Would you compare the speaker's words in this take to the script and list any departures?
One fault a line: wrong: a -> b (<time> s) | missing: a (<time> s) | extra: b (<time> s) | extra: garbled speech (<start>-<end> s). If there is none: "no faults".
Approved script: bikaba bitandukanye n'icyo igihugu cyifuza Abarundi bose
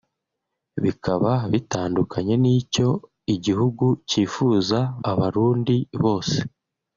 no faults